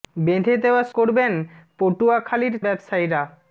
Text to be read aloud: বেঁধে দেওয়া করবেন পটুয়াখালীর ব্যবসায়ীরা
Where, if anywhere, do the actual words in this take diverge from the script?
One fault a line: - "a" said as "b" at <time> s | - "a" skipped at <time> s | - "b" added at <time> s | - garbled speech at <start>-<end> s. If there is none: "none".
none